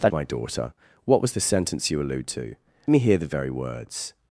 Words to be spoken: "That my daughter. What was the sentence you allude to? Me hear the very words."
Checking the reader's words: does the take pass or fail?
pass